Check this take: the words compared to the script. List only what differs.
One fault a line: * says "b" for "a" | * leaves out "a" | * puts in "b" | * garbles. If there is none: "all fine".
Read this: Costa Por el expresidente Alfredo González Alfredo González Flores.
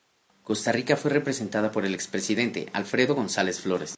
* puts in "Rica fue representada"
* leaves out "Alfredo González"